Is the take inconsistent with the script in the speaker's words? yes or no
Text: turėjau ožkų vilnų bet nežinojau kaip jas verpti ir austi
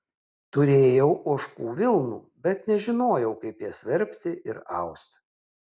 no